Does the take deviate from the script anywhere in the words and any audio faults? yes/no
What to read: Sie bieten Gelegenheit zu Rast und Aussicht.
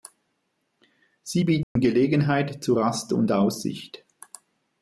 yes